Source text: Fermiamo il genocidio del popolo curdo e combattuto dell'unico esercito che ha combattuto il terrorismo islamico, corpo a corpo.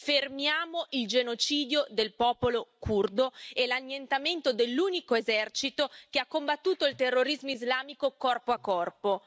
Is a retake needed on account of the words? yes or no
yes